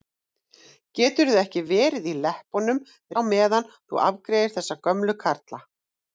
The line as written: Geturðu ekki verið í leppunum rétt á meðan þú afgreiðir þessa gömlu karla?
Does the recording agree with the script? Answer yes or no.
no